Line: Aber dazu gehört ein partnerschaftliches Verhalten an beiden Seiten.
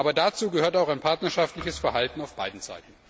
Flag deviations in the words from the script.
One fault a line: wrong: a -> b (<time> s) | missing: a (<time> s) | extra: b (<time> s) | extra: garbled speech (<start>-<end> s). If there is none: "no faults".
extra: auch (0.8 s)
wrong: an -> auf (2.2 s)